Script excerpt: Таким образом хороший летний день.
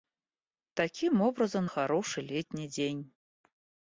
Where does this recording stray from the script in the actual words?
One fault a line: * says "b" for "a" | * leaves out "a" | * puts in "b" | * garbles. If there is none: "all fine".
all fine